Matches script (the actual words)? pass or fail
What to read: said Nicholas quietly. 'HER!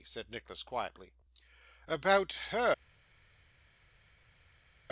fail